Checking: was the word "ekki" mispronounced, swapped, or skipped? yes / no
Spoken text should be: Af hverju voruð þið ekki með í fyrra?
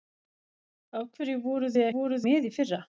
yes